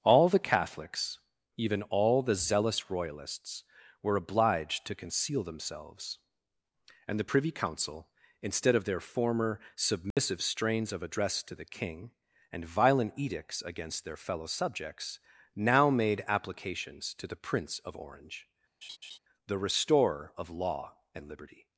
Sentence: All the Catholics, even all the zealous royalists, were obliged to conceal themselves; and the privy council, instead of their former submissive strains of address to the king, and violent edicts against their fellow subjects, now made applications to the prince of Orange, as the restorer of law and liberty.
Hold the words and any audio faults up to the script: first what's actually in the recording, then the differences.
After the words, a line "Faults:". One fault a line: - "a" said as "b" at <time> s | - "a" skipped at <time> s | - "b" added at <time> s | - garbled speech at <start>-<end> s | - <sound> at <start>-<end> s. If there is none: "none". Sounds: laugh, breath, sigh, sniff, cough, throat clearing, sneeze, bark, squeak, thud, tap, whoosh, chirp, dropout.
All the Catholics, even all the zealous royalists, were obliged to conceal themselves; and the privy council, instead of their former submissive strains of address to the king, and violent edicts against their fellow subjects, now made applications to the prince of Orange, the restorer of law and liberty.
Faults:
- dropout at 10.1-10.2 s
- "as" skipped at 18.5 s
- laugh at 18.8-19.2 s